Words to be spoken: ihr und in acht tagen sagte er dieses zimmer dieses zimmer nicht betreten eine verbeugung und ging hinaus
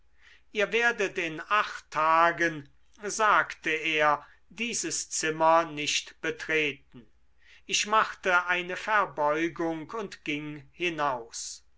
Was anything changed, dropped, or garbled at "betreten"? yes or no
yes